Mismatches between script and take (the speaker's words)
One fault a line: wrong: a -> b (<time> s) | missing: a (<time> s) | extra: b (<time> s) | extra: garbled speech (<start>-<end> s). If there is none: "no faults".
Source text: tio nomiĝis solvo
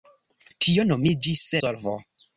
no faults